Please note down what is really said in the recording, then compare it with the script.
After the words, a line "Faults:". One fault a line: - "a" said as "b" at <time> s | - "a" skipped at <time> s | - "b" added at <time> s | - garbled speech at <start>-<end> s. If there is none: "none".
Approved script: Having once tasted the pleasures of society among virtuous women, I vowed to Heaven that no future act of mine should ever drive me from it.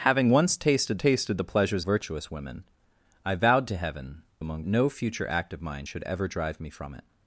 Having once tasted tasted the pleasures virtuous women, I vowed to Heaven among no future act of mine should ever drive me from it.
Faults:
- "tasted" added at 1.0 s
- "of society among" skipped at 1.8 s
- "that" said as "among" at 4.4 s